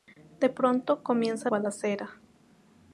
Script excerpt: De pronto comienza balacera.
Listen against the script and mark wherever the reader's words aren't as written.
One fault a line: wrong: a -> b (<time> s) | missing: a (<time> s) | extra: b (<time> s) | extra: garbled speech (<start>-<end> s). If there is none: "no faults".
no faults